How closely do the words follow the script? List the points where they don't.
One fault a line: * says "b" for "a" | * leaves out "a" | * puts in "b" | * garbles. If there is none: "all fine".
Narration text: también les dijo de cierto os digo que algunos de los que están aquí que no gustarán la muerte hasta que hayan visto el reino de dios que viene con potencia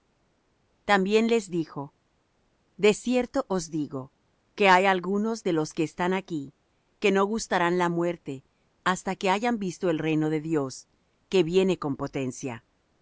* puts in "hay"